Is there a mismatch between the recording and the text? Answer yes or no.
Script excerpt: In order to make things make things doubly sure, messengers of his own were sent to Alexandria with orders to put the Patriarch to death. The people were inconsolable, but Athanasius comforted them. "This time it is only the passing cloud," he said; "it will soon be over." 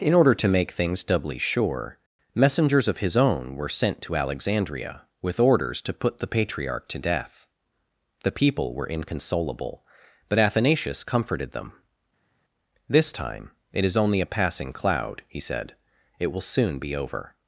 yes